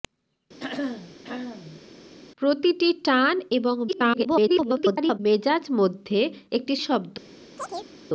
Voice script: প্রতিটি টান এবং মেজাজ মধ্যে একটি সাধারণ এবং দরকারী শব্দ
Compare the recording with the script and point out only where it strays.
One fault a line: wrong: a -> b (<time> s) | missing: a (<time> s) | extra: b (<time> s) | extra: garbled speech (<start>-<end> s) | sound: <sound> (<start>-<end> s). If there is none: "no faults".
sound: throat clearing (0.6-1.8 s)
extra: garbled speech (3.9-5.2 s)
missing: সাধারণ এবং দরকারী (6.7 s)
sound: chirp (7.6-7.9 s)